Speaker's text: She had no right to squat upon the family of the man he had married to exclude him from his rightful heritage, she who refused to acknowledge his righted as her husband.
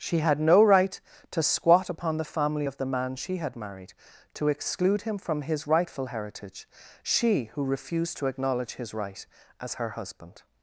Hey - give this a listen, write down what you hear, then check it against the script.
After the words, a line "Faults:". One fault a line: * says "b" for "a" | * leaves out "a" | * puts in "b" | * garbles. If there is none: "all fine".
She had no right to squat upon the family of the man she had married to exclude him from his rightful heritage, she who refused to acknowledge his right as her husband.
Faults:
* says "she" for "he"
* says "right" for "righted"